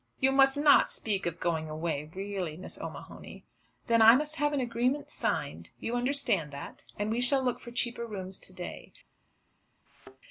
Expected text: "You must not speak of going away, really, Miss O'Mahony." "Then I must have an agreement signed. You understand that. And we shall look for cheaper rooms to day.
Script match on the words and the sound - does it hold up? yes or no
no